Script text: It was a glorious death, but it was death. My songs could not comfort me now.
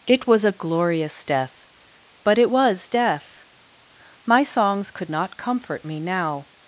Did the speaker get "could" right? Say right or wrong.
right